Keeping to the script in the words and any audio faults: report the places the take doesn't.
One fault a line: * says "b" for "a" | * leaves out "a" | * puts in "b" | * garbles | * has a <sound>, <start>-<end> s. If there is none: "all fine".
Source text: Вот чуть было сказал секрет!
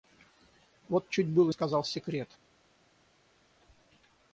all fine